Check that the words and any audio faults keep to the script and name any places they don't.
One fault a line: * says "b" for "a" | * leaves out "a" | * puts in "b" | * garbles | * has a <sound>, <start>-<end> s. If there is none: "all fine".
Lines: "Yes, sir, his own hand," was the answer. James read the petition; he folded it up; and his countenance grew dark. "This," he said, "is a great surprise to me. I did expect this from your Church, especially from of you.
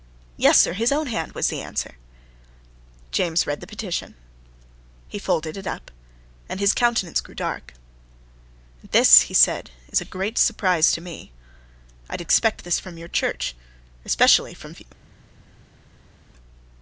all fine